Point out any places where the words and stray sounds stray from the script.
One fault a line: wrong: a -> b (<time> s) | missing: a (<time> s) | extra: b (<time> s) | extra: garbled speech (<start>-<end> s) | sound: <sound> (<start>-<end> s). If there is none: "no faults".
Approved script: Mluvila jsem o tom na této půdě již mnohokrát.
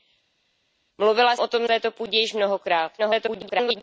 missing: jsem (1.4 s)
missing: na (1.7 s)
extra: garbled speech (3.0-3.8 s)